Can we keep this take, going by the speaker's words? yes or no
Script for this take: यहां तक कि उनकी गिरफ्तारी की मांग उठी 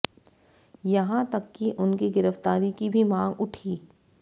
no